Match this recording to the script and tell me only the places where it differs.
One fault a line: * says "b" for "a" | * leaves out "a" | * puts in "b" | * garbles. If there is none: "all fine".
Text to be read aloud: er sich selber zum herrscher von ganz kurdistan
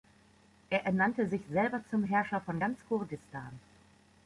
* puts in "ernannte"